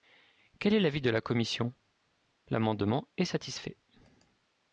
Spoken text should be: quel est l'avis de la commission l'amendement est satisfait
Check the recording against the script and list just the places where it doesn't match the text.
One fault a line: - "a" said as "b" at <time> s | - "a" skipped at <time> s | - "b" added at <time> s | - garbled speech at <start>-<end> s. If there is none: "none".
none